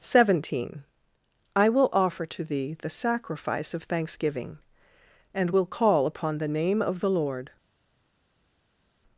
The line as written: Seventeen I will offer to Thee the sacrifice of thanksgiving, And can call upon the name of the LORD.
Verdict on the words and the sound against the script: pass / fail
fail